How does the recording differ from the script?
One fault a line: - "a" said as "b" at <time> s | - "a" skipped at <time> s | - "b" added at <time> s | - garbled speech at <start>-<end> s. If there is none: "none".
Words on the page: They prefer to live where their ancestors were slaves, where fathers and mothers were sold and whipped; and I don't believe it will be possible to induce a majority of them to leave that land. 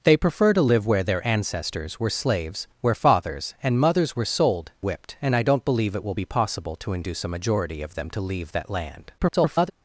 - "and" skipped at 4.7 s
- garbled speech at 9.2-9.7 s